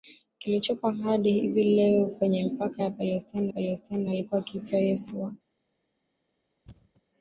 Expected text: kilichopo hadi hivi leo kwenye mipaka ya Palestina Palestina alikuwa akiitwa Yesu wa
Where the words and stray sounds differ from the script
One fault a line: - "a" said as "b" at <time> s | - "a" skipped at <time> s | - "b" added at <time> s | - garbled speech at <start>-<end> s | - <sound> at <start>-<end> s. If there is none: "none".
- thud at 6.7-7.0 s